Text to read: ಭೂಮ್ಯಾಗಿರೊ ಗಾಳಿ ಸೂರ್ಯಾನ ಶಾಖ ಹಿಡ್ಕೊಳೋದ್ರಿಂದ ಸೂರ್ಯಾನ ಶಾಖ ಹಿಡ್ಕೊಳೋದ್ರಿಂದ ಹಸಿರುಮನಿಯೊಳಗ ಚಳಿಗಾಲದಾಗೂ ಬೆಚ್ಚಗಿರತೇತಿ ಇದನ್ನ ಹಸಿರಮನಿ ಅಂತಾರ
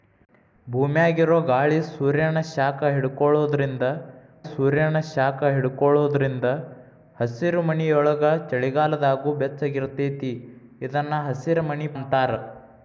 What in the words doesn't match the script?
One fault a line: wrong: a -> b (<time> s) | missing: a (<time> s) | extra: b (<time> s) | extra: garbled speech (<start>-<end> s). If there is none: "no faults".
no faults